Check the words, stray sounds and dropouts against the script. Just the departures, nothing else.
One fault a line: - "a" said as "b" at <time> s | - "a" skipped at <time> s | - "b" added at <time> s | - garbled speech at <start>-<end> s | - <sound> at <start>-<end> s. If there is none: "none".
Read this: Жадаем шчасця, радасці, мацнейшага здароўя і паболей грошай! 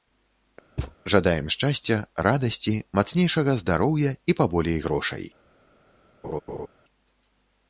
- thud at 0.8-1.0 s
- laugh at 6.2-6.7 s